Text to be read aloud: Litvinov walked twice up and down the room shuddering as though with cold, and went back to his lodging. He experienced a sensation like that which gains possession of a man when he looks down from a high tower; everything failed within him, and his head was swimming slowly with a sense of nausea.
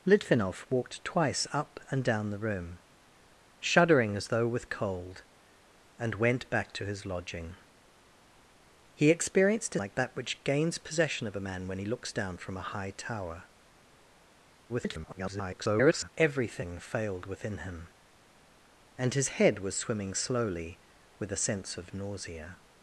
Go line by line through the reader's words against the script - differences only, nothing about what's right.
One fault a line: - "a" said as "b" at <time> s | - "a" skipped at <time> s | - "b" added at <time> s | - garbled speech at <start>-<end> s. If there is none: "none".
- "sensation" skipped at 9.8 s
- garbled speech at 14.7-16.1 s